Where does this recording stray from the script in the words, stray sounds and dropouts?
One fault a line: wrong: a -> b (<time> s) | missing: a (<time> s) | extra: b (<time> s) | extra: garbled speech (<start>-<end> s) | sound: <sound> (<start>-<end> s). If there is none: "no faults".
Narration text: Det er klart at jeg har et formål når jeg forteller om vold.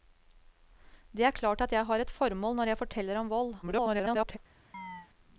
extra: garbled speech (3.6-4.4 s)
sound: chirp (4.7-5.1 s)